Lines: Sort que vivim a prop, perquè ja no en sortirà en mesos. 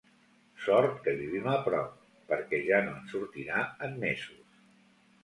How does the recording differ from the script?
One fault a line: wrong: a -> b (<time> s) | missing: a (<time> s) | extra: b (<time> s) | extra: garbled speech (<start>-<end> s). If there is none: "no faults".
no faults